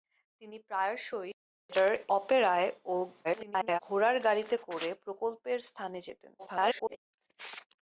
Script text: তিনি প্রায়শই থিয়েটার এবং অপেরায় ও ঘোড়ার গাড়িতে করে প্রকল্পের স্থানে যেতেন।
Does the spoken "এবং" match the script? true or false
false